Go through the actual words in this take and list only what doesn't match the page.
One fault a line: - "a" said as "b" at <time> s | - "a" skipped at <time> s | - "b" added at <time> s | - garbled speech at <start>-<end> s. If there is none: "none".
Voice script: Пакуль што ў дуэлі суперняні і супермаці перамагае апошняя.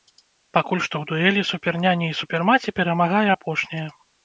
none